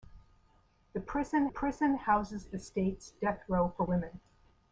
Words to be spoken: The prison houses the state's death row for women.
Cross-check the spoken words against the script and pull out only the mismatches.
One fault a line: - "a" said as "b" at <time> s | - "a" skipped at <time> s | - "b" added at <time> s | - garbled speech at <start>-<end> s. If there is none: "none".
- "prison" added at 1.5 s